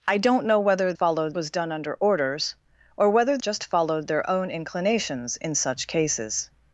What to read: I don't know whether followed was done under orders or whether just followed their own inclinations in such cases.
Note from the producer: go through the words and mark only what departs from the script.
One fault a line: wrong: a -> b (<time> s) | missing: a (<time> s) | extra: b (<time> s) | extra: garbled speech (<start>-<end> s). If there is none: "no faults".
no faults